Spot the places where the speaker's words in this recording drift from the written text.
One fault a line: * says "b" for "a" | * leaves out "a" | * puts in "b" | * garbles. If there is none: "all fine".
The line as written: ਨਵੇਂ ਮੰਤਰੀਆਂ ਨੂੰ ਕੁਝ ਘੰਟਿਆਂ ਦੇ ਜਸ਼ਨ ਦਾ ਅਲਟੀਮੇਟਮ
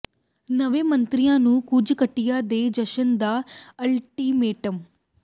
all fine